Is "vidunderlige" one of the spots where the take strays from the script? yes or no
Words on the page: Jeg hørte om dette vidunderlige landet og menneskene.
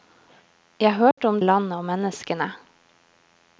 yes